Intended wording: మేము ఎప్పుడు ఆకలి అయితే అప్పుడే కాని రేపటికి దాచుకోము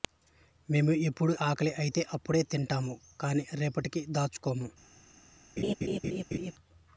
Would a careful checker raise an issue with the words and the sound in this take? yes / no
yes